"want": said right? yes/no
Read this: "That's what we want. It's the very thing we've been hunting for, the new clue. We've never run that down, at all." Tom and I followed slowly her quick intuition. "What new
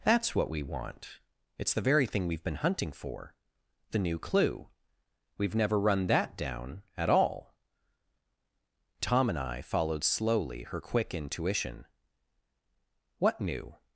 yes